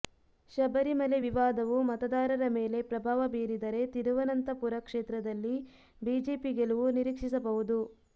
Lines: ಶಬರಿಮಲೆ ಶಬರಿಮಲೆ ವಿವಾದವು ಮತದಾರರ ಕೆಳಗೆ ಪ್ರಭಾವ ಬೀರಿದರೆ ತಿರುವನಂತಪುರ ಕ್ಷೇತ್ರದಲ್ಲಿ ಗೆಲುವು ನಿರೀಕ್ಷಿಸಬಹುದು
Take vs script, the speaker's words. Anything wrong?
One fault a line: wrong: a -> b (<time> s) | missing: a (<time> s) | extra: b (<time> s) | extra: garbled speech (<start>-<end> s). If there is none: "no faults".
missing: ಶಬರಿಮಲೆ (1.2 s)
wrong: ಕೆಳಗೆ -> ಮೇಲೆ (2.5 s)
extra: ಬಿಜೆಪಿ (6.0 s)